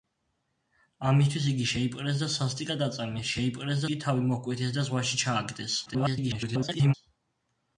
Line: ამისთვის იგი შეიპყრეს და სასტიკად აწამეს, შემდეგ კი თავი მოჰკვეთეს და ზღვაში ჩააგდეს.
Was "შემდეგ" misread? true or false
true